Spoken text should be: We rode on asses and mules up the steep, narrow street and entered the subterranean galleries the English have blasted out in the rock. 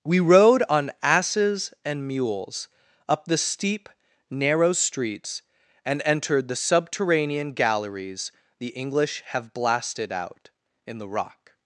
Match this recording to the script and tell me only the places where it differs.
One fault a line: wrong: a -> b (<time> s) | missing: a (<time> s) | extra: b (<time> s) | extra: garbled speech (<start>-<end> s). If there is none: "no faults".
wrong: street -> streets (4.7 s)